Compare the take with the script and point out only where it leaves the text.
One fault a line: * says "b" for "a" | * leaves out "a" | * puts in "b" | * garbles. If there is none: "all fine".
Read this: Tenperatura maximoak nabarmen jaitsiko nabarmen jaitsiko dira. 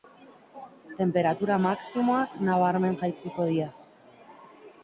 * leaves out "nabarmen jaitsiko"